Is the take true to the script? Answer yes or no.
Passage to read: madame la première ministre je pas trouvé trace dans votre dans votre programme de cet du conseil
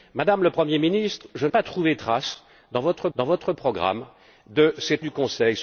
yes